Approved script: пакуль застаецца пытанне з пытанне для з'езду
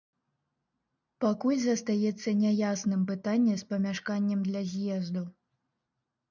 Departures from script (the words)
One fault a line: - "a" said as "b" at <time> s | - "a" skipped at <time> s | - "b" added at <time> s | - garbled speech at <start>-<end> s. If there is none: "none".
- "няясным" added at 2.4 s
- "пытанне" said as "памяшканнем" at 3.8 s